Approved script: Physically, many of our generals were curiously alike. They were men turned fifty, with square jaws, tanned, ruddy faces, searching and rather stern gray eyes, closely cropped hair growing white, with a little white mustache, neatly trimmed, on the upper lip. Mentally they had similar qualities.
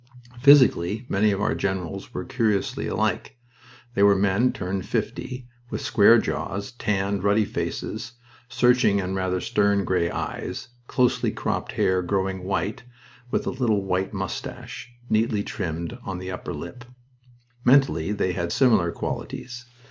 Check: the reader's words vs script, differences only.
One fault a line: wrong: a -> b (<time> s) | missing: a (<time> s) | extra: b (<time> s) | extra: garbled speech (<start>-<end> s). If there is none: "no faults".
no faults